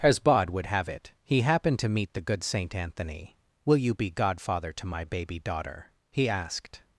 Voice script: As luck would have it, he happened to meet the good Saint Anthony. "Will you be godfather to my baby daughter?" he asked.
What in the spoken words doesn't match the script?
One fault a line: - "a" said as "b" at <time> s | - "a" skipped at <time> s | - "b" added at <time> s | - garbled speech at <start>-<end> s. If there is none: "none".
- "luck" said as "bod" at 0.2 s